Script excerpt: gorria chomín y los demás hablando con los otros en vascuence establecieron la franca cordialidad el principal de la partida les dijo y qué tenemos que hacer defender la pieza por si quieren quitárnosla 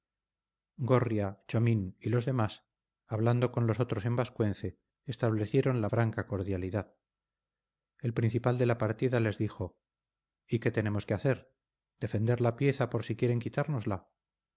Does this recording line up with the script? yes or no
yes